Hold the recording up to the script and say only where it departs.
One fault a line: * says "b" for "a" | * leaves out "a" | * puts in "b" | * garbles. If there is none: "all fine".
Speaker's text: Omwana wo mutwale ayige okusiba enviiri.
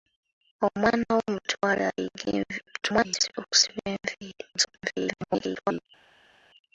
* garbles
* garbles